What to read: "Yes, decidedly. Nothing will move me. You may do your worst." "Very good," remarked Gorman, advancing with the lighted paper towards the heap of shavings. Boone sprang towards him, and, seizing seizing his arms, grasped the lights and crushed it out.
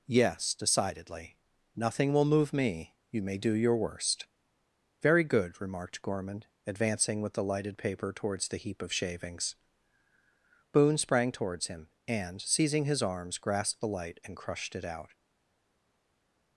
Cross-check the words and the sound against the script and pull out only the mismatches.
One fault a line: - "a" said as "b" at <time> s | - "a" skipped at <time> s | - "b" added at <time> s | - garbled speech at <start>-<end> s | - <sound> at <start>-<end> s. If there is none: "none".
- "seizing" skipped at 12.9 s
- "lights" said as "light" at 13.9 s